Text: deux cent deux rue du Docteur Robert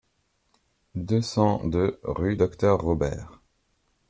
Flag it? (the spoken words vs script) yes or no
yes